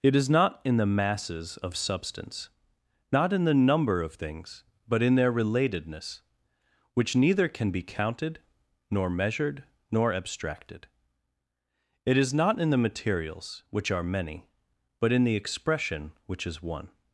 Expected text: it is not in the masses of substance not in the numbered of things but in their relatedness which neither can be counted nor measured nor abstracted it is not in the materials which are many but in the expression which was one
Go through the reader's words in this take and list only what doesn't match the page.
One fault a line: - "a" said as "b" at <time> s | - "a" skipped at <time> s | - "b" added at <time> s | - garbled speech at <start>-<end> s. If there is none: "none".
- "numbered" said as "number" at 3.5 s
- "was" said as "is" at 16.5 s